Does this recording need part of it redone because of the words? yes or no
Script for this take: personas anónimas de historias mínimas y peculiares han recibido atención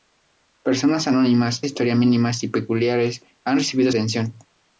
no